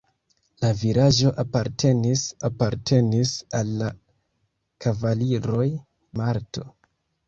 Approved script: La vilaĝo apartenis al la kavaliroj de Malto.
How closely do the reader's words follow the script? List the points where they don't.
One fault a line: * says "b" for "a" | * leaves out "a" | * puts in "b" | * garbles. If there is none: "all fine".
* puts in "apartenis"
* leaves out "de"